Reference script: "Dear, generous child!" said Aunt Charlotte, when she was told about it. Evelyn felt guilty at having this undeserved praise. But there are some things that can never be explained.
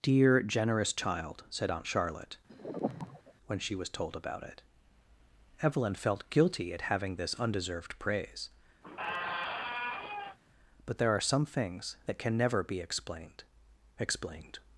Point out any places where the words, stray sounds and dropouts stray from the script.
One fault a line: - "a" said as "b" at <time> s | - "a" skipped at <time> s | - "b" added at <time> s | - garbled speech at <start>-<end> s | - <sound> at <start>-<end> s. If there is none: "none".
- sigh at 2.5-3.3 s
- squeak at 8.8-10.4 s
- "explained" added at 14.0 s